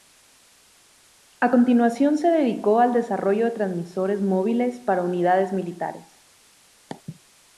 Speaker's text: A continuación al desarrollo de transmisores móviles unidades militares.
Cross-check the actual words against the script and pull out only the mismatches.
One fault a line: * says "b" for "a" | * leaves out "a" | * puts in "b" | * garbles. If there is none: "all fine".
* puts in "se dedicó"
* puts in "para"